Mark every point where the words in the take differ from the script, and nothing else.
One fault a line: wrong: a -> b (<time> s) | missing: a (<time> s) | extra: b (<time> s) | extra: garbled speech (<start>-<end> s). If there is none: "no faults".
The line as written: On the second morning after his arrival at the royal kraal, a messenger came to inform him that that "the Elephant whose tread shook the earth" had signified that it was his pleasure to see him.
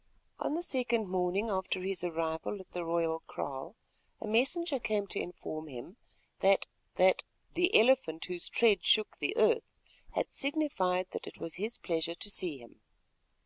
no faults